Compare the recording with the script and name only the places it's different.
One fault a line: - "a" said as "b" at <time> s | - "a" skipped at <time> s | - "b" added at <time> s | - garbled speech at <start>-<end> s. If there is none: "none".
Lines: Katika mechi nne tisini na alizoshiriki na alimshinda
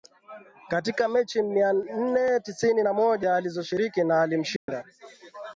- "mia" added at 1.4 s
- "moja" added at 2.9 s